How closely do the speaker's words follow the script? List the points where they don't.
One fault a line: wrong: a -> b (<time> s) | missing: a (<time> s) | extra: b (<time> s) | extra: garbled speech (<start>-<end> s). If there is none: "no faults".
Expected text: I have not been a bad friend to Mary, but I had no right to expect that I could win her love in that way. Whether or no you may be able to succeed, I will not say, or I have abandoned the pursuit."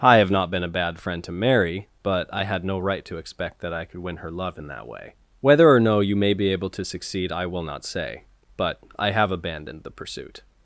wrong: or -> but (8.6 s)